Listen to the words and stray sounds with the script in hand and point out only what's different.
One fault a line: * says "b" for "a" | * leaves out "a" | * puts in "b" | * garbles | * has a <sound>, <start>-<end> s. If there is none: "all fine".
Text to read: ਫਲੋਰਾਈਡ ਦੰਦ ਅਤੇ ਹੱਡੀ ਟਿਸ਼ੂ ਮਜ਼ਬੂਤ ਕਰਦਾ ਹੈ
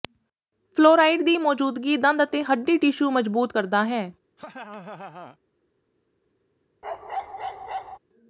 * puts in "ਦੀ ਮੌਜੂਦਗੀ"
* has a laugh, 4.4-5.4 s
* has a bark, 6.8-8.0 s